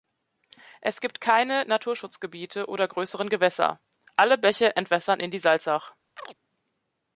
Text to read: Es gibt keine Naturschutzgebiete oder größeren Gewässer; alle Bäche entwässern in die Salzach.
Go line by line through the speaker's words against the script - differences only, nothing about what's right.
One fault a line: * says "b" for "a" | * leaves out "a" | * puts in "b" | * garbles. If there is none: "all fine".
all fine